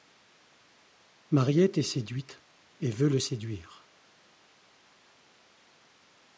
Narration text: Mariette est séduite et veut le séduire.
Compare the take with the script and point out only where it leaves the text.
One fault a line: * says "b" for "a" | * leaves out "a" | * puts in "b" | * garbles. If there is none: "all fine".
all fine